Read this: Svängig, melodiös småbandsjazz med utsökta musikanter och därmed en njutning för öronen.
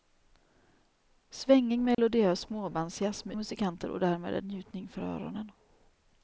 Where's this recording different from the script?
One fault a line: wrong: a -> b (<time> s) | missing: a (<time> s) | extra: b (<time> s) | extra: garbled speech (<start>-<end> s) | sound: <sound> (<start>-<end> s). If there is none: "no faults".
sound: dropout (1.9-2.0 s)
missing: utsökta (3.4 s)